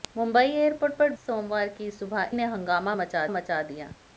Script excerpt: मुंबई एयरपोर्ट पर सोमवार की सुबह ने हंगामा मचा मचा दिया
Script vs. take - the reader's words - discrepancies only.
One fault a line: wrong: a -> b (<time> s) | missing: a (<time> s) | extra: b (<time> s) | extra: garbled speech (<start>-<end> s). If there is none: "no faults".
no faults